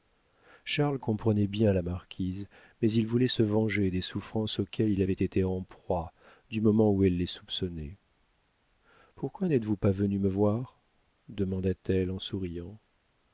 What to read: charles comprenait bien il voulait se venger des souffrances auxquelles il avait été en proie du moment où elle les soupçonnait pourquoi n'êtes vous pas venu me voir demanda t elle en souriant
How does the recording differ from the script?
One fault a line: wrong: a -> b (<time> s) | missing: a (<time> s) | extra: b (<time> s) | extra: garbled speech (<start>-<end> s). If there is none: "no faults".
extra: la marquise mais (1.7 s)